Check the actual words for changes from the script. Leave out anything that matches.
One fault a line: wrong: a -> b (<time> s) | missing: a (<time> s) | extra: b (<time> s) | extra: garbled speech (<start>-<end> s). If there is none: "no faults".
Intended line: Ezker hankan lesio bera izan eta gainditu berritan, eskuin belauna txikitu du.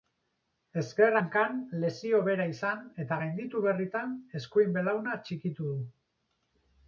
no faults